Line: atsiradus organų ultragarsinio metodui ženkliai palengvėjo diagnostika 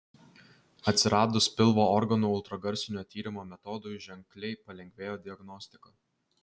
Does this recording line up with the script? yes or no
no